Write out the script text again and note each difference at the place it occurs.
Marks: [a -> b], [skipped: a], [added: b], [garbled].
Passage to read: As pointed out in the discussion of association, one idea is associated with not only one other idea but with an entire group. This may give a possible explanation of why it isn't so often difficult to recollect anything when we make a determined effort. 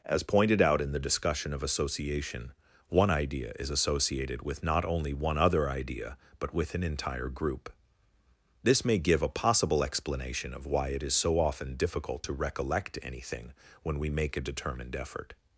As pointed out in the discussion of association, one idea is associated with not only one other idea but with an entire group. This may give a possible explanation of why it [isn't -> is] so often difficult to recollect anything when we make a determined effort.